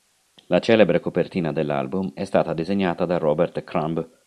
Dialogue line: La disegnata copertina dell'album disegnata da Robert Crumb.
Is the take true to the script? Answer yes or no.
no